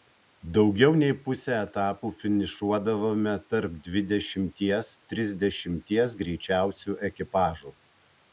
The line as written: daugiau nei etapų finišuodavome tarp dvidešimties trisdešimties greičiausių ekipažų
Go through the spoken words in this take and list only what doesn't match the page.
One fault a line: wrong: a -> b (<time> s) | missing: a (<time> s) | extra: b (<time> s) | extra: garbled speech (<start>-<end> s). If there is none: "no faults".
extra: pusę (1.2 s)